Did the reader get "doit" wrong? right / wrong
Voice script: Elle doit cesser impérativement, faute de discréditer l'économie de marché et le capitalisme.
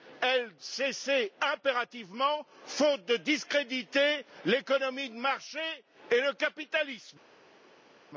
wrong